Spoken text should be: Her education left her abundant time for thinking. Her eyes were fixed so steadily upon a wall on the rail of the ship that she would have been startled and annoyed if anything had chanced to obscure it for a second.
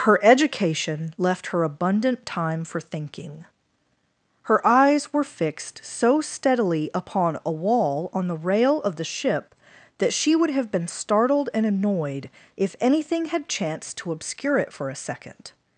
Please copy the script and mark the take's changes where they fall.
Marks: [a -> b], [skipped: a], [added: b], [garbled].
Her education left her abundant time for thinking. Her eyes were fixed so steadily upon a wall on the rail of the ship that she would have been startled and annoyed if anything had chanced to obscure it for a second.